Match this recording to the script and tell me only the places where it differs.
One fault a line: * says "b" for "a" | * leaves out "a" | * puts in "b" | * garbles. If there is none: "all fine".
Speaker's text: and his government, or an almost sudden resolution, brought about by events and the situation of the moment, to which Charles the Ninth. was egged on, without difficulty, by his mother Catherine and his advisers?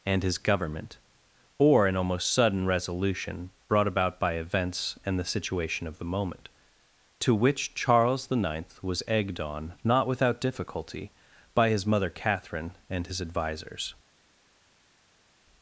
* puts in "not"